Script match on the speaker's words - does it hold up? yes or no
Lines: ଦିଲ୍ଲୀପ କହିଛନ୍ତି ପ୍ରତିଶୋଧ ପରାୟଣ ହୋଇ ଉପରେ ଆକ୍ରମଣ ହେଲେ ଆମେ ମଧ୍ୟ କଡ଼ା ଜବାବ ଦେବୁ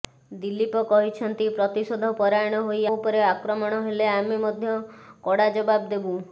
yes